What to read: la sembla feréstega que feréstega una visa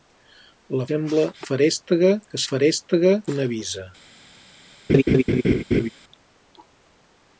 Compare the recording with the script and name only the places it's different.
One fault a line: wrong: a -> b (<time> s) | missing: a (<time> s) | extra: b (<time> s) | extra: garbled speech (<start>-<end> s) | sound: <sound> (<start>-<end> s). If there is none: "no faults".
sound: laugh (4.9-5.9 s)